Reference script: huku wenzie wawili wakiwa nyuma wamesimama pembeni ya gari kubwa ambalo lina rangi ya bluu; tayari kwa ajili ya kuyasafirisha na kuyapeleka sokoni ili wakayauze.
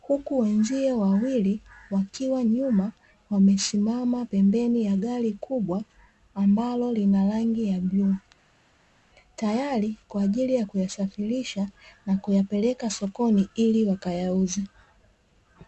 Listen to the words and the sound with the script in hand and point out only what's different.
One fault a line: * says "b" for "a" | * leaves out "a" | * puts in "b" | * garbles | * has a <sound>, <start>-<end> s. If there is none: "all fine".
all fine